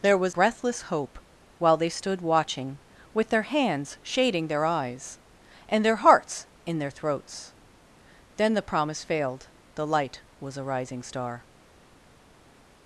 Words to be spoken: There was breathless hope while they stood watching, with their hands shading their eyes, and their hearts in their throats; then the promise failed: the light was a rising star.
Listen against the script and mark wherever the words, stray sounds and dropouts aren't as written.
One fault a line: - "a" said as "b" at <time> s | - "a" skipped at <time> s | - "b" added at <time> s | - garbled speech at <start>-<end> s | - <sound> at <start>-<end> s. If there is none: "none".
none